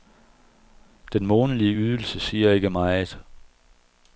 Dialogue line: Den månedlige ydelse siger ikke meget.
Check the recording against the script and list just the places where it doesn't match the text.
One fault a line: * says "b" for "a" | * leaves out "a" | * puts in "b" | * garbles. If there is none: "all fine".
all fine